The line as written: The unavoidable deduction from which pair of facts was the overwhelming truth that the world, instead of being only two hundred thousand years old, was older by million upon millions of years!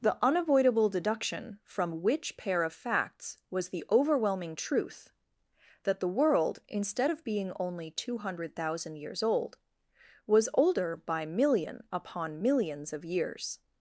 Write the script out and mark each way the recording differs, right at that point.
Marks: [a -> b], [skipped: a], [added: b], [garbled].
The unavoidable deduction from which pair of facts was the overwhelming truth that the world, instead of being only two hundred thousand years old, was older by million upon millions of years!